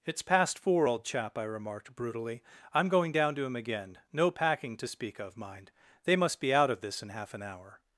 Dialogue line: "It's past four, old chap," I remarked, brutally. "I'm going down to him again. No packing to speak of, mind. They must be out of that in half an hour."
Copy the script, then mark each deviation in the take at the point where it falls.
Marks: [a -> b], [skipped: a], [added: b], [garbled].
"It's past four, old chap," I remarked, brutally. "I'm going down to him again. No packing to speak of, mind. They must be out of [that -> this] in half an hour."